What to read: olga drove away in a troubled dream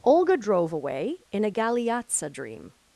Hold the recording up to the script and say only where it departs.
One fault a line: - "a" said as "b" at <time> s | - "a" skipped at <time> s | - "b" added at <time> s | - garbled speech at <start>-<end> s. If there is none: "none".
- "troubled" said as "galeazza" at 1.5 s